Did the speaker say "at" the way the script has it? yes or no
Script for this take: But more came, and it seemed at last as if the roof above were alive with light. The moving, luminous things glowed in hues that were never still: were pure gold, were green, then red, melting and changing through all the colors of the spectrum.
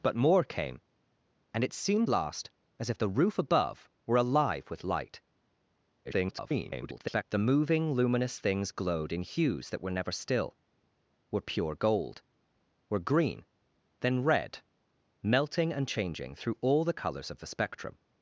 no